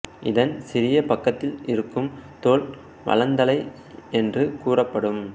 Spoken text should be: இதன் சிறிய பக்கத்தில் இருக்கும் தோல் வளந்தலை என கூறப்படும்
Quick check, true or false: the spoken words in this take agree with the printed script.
false